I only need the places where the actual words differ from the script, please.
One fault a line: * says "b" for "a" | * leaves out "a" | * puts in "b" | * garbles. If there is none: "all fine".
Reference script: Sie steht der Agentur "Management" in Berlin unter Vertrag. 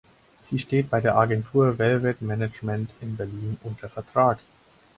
* puts in "bei"
* puts in "Velvet"